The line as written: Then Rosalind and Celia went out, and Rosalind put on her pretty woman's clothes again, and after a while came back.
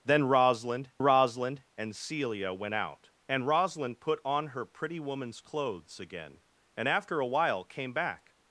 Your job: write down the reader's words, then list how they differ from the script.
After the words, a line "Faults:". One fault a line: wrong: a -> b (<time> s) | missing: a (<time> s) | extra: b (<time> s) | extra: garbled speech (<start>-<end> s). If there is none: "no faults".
Then Rosalind Rosalind and Celia went out, and Rosalind put on her pretty woman's clothes again, and after a while came back.
Faults:
extra: Rosalind (1.0 s)